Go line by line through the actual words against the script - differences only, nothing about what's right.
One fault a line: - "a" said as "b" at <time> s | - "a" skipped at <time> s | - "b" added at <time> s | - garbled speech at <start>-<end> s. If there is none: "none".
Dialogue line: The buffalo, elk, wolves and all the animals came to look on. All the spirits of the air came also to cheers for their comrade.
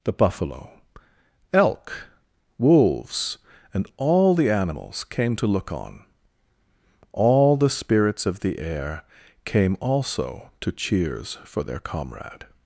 none